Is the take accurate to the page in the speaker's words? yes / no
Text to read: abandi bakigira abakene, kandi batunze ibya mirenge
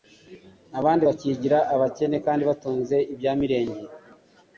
yes